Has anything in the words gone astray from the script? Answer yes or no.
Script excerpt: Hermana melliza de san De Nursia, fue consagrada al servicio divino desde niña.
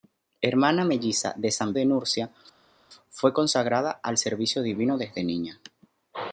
no